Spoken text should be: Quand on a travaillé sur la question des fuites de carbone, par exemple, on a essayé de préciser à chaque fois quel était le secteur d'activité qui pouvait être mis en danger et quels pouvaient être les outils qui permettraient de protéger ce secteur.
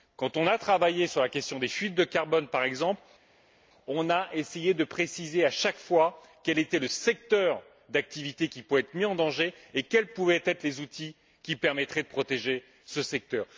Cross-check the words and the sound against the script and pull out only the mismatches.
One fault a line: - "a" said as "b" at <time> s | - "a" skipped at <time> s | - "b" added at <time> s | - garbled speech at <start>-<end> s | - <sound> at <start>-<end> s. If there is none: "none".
none